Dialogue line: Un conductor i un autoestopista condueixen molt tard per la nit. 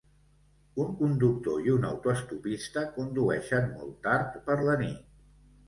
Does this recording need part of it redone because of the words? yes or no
no